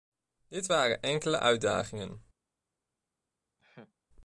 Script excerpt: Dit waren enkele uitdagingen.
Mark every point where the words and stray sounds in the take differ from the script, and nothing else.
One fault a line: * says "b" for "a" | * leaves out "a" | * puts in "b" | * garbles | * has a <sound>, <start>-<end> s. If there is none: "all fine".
* has a laugh, 3.6-3.9 s